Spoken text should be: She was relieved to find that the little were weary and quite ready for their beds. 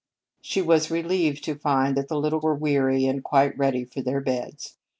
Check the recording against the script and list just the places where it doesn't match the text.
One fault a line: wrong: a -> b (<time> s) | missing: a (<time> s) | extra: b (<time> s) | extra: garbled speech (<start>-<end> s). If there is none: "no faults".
no faults